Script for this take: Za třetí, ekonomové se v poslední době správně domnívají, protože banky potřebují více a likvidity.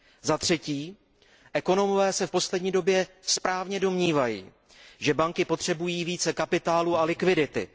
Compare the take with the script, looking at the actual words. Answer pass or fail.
fail